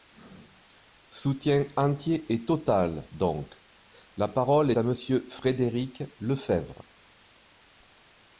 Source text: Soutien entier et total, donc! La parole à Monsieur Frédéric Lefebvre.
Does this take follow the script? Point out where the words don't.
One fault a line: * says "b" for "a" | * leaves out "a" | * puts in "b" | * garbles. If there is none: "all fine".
all fine